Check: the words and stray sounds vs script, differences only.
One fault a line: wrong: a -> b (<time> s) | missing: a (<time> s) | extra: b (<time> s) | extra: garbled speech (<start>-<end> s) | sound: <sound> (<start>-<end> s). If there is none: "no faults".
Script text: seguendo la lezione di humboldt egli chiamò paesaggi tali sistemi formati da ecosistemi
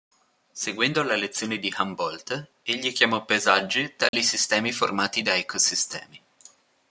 sound: dropout (4.1-4.1 s)